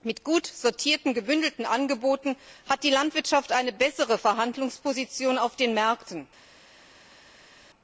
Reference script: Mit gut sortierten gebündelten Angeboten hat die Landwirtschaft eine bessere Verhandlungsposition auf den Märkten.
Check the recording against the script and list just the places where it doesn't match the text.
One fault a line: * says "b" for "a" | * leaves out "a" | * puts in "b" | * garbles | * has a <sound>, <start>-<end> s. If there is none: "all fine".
all fine